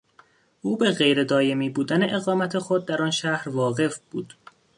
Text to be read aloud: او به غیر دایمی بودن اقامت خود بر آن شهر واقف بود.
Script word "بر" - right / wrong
wrong